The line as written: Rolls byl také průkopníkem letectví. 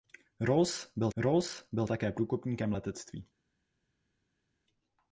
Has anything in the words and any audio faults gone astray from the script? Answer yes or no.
yes